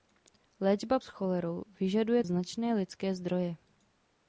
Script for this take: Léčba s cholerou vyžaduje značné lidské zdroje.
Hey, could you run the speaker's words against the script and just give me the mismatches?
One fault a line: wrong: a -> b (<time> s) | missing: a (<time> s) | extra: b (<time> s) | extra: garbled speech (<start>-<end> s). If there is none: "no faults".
no faults